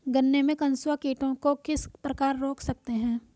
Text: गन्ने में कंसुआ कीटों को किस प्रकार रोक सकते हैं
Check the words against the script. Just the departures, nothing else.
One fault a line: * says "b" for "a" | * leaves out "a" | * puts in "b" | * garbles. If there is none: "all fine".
all fine